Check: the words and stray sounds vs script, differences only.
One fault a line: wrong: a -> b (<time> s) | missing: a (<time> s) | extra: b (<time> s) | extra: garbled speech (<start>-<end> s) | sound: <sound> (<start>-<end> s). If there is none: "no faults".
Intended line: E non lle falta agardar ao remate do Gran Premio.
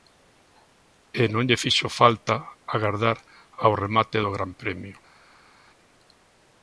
extra: fixo (1.6 s)